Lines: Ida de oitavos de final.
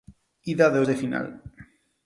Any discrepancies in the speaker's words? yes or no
yes